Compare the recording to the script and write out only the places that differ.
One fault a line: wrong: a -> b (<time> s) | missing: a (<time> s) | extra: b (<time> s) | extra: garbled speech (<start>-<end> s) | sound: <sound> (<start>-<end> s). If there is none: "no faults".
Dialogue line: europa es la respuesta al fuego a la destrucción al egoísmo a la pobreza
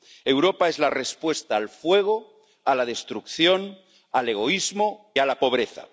no faults